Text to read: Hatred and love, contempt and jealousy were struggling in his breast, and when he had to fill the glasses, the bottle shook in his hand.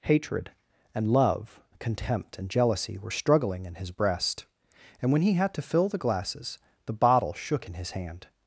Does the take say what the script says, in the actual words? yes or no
yes